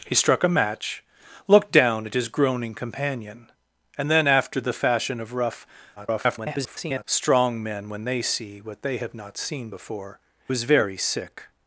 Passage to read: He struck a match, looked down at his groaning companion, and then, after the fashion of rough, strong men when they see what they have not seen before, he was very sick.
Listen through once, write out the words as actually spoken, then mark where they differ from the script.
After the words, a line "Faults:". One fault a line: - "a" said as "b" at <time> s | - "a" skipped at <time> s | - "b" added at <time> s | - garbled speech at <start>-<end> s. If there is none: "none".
He struck a match, looked down at his groaning companion, and then, after the fashion of rough, [garbled] strong men when they see what they have not seen before, was very sick.
Faults:
- garbled speech at 6.0-7.0 s
- "he" skipped at 10.2 s